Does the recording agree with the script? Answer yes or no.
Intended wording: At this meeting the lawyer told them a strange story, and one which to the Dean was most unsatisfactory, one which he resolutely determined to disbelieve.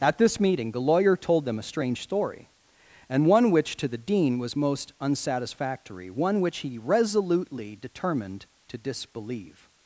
yes